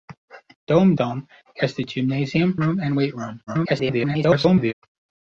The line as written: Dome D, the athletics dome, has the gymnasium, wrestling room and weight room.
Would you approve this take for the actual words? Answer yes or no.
no